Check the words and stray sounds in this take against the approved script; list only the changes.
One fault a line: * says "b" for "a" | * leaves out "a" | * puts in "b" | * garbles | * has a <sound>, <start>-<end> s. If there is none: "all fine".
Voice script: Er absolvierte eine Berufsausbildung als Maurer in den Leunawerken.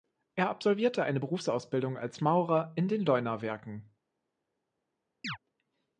* has a chirp, 5.2-5.4 s